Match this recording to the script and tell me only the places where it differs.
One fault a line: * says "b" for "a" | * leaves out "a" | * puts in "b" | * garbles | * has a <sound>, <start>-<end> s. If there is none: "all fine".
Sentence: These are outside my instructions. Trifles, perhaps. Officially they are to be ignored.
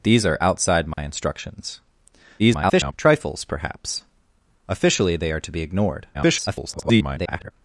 * has a dropout, 0.9-1.0 s
* garbles
* garbles